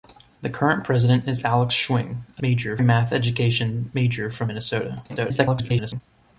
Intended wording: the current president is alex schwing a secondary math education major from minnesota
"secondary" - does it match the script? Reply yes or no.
no